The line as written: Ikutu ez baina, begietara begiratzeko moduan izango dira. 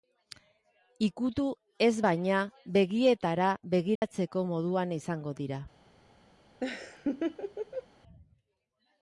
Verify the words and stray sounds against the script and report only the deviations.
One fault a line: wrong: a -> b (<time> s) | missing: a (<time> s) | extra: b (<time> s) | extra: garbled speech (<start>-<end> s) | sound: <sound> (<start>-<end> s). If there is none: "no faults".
sound: dropout (4.0-4.0 s)
sound: laugh (6.6-7.9 s)